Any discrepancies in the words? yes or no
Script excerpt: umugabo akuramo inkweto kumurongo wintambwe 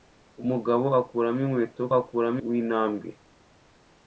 yes